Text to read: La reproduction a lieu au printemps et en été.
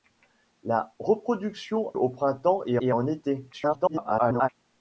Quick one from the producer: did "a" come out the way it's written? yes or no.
no